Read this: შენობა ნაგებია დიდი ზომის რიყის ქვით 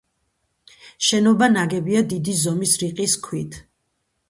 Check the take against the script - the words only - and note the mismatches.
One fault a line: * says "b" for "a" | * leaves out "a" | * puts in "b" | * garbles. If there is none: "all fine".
all fine